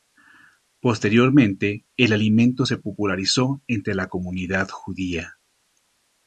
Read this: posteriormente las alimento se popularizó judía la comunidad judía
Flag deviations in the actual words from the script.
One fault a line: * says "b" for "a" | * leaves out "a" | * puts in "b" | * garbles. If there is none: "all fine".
* says "el" for "las"
* says "entre" for "judía"